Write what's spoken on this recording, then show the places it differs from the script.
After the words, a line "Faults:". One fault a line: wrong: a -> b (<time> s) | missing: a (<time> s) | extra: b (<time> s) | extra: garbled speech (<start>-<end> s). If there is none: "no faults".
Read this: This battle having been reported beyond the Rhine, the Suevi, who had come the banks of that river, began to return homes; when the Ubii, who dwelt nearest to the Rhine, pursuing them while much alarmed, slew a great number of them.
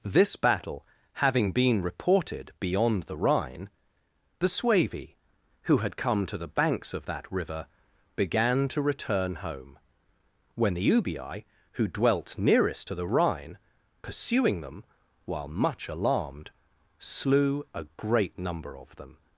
This battle having been reported beyond the Rhine, the Suevi, who had come to the banks of that river, began to return home; when the Ubii, who dwelt nearest to the Rhine, pursuing them while much alarmed, slew a great number of them.
Faults:
extra: to (6.2 s)
wrong: homes -> home (9.3 s)